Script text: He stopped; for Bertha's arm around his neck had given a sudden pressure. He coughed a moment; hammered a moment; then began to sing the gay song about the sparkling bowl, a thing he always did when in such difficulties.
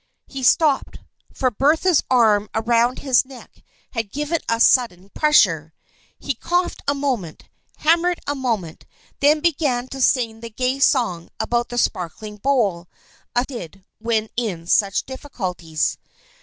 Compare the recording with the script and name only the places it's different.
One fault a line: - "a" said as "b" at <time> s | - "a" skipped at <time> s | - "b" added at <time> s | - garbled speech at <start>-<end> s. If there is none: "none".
- "thing he always" skipped at 13.4 s